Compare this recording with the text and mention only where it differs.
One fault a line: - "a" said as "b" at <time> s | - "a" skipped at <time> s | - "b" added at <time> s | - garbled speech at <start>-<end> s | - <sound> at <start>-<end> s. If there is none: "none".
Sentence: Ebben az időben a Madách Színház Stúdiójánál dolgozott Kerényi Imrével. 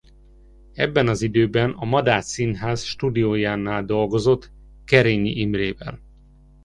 none